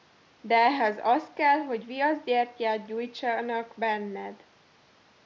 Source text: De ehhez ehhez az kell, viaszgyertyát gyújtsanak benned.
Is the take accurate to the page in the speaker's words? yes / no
no